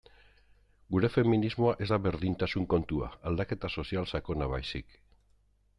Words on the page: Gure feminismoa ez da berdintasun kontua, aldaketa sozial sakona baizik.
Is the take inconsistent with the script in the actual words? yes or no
no